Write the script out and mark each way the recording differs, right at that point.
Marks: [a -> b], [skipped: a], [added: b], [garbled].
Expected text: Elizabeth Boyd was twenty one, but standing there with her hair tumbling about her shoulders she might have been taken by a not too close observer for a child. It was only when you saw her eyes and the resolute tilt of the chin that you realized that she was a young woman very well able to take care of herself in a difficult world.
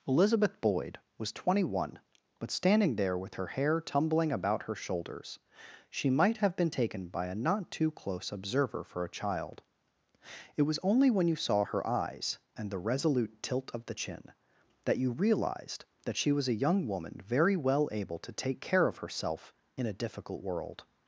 Elizabeth Boyd was twenty one, but standing there with her hair tumbling about her shoulders she might have been taken by a not too close observer for a child. It was only when you saw her eyes and the resolute tilt of the chin that you realized that she was a young woman very well able to take care of herself in a difficult world.